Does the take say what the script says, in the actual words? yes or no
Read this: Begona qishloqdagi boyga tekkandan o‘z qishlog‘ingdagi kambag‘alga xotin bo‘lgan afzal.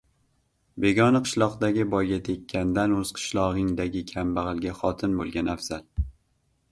yes